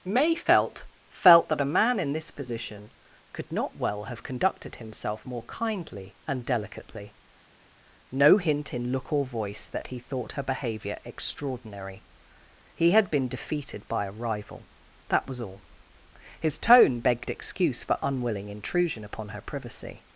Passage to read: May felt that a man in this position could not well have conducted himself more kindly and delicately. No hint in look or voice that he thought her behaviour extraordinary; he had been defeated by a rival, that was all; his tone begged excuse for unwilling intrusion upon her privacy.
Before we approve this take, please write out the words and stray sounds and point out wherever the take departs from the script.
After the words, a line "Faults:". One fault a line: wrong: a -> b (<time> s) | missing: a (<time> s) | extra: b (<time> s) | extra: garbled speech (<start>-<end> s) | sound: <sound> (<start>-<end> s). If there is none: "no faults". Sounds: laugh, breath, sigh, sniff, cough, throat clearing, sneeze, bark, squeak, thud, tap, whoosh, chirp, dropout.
May felt felt that a man in this position could not well have conducted himself more kindly and delicately. No hint in look or voice that he thought her behaviour extraordinary; he had been defeated by a rival, that was all; his tone begged excuse for unwilling intrusion upon her privacy.
Faults:
extra: felt (1.1 s)